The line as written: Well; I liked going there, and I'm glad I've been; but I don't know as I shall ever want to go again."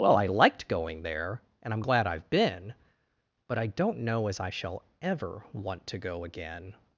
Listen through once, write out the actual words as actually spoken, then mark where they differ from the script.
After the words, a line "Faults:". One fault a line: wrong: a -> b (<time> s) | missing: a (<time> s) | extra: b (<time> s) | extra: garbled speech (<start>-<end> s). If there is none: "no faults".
Well; I liked going there, and I'm glad I've been; but I don't know as I shall ever want to go again."
Faults:
no faults